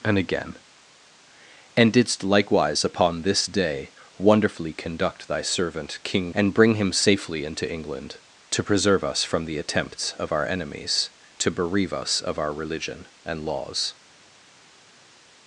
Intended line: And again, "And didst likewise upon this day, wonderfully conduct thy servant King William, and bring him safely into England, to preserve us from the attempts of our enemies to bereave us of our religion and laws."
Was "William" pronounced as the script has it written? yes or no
no